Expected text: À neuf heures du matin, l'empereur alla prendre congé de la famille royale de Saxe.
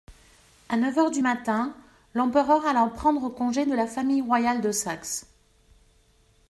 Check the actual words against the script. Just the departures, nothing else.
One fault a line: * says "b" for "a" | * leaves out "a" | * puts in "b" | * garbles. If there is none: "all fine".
all fine